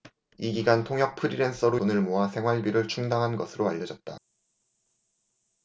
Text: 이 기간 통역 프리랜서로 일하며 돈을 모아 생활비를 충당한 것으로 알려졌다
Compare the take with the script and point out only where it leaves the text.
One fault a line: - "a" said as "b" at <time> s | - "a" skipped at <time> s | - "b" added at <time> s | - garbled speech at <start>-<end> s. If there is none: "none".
- "일하며" skipped at 1.8 s